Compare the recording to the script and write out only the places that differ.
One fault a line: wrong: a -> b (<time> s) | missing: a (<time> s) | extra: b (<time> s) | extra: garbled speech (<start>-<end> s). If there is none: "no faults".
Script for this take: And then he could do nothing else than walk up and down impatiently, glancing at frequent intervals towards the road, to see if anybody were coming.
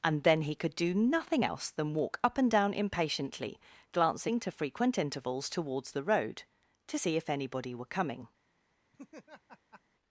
wrong: at -> to (4.4 s)